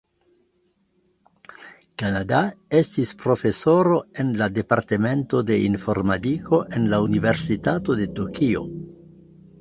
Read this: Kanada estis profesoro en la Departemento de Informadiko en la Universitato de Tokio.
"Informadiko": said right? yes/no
yes